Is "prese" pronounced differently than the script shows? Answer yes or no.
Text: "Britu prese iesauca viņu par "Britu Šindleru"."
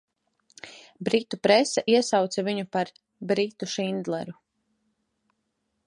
no